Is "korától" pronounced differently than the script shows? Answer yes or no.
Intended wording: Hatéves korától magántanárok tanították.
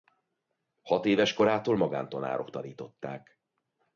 no